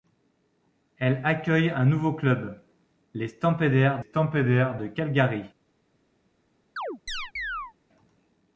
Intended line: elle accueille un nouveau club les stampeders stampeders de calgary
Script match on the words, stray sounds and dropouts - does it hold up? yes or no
no